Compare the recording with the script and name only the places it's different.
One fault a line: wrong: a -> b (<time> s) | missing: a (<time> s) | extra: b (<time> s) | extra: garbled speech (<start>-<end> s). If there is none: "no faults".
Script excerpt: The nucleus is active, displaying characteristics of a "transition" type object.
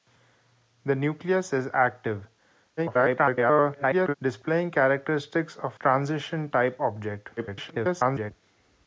extra: garbled speech (2.8-4.1 s)
missing: a (5.8 s)
extra: garbled speech (7.4-8.3 s)